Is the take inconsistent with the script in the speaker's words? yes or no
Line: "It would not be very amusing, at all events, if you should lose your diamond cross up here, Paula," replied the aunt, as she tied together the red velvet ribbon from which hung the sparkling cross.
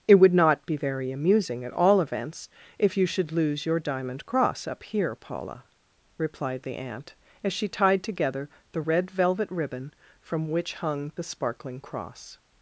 no